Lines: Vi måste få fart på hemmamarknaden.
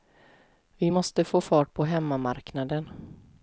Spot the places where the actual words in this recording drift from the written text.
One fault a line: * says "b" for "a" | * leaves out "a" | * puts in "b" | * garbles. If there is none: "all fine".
all fine